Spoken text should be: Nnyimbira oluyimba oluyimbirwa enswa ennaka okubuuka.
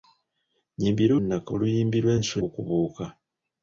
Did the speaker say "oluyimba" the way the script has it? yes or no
no